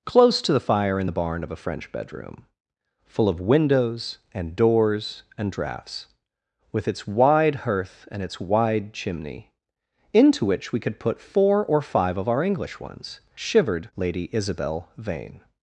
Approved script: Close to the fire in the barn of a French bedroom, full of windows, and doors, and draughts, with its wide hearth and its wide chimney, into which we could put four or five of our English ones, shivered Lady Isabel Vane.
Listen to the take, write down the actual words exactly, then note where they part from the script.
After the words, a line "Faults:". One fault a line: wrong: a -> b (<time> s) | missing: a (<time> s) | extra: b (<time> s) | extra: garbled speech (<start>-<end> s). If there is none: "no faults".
Close to the fire in the barn of a French bedroom, full of windows, and doors, and draughts, with its wide hearth and its wide chimney, into which we could put four or five of our English ones, shivered Lady Isabel Vane.
Faults:
no faults